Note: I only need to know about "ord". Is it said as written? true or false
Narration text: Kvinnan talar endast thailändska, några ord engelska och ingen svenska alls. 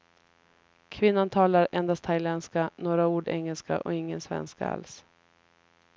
true